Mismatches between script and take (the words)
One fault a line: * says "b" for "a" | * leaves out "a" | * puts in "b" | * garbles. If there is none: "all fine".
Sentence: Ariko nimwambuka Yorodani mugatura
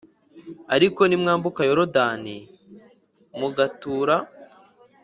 all fine